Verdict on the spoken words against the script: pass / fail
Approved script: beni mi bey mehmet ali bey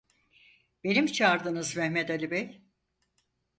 fail